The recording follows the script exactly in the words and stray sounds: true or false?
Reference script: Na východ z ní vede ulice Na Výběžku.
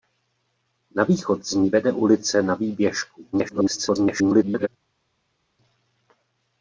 false